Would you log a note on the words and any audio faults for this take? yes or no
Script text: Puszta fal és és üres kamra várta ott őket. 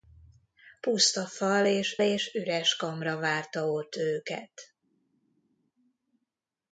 no